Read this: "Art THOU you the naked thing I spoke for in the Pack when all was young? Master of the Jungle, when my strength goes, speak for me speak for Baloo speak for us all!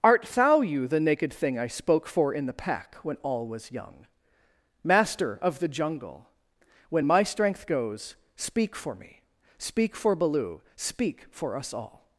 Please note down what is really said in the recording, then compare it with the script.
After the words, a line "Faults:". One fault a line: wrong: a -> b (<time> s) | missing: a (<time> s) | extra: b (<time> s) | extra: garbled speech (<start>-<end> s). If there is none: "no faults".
"Art THOU you the naked thing I spoke for in the Pack when all was young? Master of the Jungle, when my strength goes, speak for me speak for Baloo speak for us all!
Faults:
no faults